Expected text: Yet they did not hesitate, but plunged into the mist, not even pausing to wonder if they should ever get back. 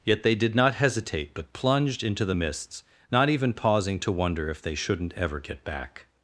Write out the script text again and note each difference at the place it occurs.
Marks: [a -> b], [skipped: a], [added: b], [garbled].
Yet they did not hesitate, but plunged into the [mist, -> mists] not even pausing to wonder if they [should -> shouldn't] ever get back.